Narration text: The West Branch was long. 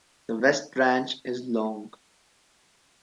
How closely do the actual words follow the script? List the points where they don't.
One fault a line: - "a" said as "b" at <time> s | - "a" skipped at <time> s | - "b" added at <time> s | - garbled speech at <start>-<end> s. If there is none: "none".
- "was" said as "is" at 1.2 s